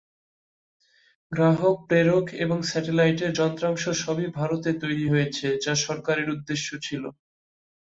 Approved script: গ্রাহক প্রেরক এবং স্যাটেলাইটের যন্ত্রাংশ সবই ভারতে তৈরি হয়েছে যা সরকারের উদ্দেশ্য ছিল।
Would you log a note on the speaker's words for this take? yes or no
no